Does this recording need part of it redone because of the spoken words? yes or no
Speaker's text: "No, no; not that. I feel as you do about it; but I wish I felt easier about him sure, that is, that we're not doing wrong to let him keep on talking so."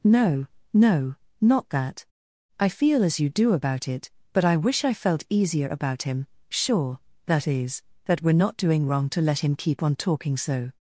no